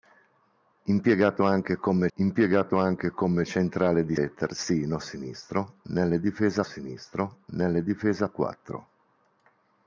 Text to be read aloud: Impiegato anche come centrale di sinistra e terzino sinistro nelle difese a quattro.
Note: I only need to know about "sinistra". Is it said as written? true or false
false